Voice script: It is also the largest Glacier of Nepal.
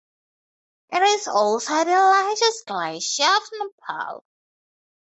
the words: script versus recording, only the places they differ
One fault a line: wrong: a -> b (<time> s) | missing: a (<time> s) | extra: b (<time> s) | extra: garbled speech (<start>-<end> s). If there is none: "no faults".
no faults